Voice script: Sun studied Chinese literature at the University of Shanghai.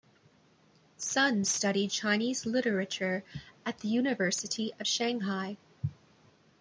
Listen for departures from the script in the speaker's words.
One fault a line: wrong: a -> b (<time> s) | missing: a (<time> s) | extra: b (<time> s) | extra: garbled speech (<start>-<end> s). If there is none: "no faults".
no faults